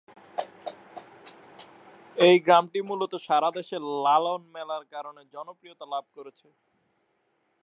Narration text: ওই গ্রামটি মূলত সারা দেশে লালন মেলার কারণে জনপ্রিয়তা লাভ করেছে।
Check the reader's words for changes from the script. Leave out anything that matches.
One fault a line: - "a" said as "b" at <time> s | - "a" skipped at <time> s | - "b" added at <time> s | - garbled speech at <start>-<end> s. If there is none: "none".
- "ওই" said as "এই" at 2.2 s